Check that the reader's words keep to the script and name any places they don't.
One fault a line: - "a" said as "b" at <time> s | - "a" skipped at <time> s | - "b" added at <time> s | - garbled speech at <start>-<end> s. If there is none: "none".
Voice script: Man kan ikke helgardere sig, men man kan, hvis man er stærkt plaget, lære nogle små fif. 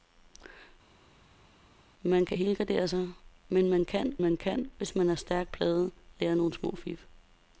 - "ikke" skipped at 2.4 s
- "man kan" added at 4.2 s